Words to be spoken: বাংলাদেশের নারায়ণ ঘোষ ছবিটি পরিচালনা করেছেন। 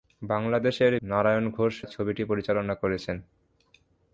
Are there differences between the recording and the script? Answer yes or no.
no